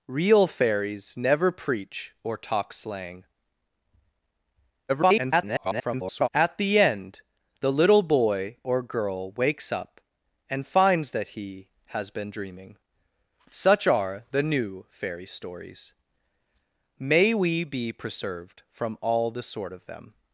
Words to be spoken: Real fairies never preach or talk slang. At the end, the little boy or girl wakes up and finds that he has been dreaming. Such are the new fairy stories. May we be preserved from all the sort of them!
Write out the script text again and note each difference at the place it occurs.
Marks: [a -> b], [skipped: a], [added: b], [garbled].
Real fairies never preach or talk slang. [garbled] At the end, the little boy or girl wakes up and finds that he has been dreaming. Such are the new fairy stories. May we be preserved from all the sort of them!